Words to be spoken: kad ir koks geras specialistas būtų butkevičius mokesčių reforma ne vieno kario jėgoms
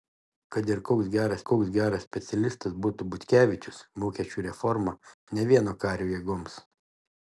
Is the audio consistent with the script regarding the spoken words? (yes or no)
no